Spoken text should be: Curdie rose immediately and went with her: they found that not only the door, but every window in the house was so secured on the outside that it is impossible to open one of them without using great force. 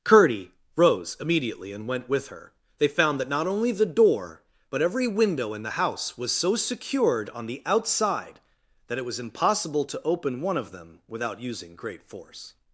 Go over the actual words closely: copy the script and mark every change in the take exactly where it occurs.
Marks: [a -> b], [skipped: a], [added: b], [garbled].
Curdie rose immediately and went with her: they found that not only the door, but every window in the house was so secured on the outside that it [is -> was] impossible to open one of them without using great force.